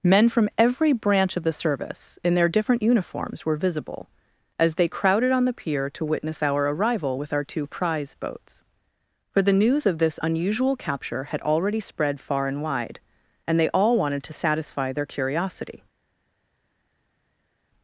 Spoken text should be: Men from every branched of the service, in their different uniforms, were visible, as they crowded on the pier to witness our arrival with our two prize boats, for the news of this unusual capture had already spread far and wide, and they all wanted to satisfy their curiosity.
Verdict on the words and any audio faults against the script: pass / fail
fail